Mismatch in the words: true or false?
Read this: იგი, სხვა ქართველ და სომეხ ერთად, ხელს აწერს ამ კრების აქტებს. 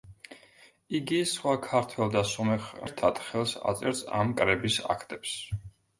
false